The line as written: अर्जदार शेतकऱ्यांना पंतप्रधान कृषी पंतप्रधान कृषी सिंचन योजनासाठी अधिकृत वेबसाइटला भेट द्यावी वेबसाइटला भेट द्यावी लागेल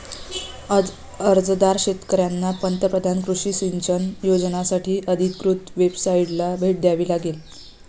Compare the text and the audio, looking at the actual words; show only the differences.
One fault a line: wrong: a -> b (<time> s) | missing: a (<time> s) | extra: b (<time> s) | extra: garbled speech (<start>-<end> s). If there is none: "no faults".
missing: पंतप्रधान कृषी (3.5 s)
missing: वेबसाइटला भेट द्यावी (7.1 s)